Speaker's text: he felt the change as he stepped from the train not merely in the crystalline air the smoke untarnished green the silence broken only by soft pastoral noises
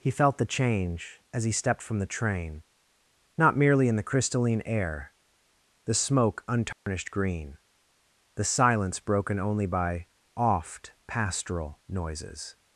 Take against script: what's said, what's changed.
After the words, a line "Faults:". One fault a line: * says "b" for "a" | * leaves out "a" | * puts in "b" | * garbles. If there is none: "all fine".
he felt the change as he stepped from the train not merely in the crystalline air the smoke untarnished green the silence broken only by oft pastoral noises
Faults:
* says "oft" for "soft"